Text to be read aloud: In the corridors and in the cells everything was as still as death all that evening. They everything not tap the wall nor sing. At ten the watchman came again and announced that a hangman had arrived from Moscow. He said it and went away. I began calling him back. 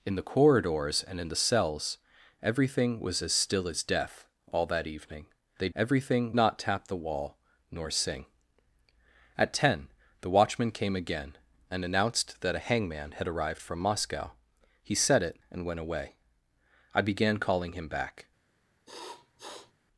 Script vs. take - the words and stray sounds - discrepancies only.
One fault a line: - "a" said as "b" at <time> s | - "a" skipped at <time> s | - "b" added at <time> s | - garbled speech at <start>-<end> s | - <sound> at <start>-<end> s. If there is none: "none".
- sniff at 18.9-19.7 s